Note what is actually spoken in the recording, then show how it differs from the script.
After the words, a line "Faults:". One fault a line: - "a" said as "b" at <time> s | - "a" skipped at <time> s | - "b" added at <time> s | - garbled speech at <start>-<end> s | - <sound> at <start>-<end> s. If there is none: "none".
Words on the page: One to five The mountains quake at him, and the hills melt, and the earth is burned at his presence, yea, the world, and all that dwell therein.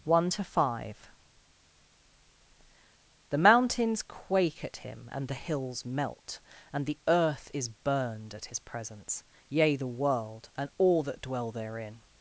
One to five The mountains quake at him, and the hills melt, and the earth is burned at his presence, yea, the world, and all that dwell therein.
Faults:
none